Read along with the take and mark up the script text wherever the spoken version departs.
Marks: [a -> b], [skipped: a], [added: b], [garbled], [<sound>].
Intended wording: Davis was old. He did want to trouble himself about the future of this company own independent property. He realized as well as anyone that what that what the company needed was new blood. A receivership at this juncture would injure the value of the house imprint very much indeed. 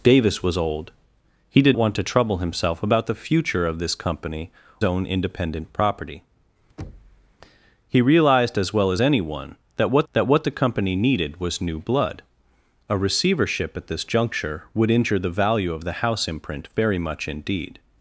Davis was old. He did want to trouble himself about the future of this company own independent property. [thud] He realized as well as anyone that what that what the company needed was new blood. A receivership at this juncture would injure the value of the house imprint very much indeed.